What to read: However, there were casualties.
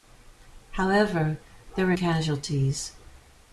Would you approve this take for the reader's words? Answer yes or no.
yes